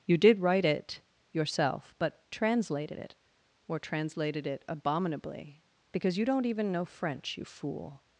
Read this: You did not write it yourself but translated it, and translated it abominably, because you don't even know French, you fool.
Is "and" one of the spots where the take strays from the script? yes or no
yes